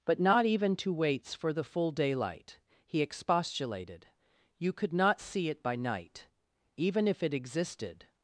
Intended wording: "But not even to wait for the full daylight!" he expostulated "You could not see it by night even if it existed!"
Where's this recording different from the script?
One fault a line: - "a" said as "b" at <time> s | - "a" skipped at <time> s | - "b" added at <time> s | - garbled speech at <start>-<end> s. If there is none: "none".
- "wait" said as "waits" at 0.9 s